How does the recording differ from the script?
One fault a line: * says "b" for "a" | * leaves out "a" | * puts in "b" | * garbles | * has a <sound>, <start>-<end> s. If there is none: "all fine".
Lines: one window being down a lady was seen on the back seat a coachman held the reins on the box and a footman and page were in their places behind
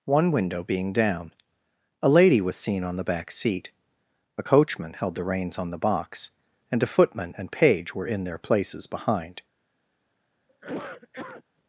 * has a cough, 10.5-11.4 s